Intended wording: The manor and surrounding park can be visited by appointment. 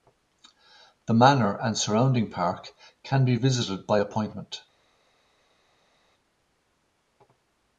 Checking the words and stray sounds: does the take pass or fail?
pass